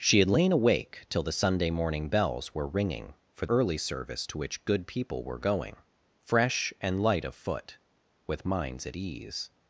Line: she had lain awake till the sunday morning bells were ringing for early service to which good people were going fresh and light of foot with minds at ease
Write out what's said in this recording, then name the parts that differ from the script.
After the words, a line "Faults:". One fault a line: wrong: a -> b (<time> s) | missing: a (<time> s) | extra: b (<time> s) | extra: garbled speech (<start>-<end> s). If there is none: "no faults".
she had lain awake till the sunday morning bells were ringing for early service to which good people were going fresh and light of foot with minds at ease
Faults:
no faults